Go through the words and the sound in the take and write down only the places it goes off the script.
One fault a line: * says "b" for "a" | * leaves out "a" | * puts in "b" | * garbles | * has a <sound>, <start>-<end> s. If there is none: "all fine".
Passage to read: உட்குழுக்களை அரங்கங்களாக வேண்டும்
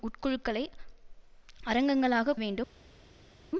all fine